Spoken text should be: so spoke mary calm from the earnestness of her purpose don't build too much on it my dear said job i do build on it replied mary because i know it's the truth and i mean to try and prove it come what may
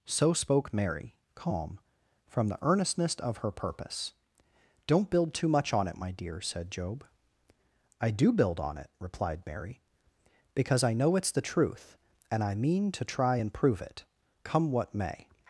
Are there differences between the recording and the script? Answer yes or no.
no